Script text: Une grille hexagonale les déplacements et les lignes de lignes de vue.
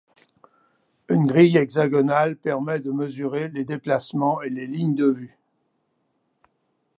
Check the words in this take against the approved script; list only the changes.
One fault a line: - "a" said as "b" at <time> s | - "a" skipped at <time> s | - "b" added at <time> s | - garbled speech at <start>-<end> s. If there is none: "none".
- "permet de mesurer" added at 2.4 s
- "lignes de" skipped at 5.1 s